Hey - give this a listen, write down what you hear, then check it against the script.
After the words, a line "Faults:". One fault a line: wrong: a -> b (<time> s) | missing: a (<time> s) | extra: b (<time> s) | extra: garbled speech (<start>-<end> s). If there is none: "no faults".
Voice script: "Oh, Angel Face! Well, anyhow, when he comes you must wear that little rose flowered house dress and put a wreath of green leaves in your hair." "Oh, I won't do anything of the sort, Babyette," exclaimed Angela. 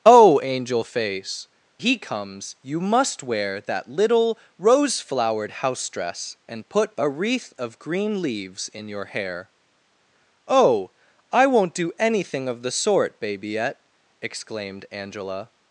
"Oh, Angel Face! He comes you must wear that little rose flowered house dress and put a wreath of green leaves in your hair." "Oh, I won't do anything of the sort, Babyette," exclaimed Angela.
Faults:
missing: Well anyhow when (1.5 s)